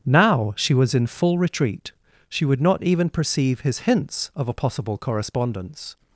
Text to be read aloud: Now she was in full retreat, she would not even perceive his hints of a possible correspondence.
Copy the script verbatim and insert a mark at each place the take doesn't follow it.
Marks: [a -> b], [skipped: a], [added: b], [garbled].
Now she was in full retreat, she would not even perceive his hints of a possible correspondence.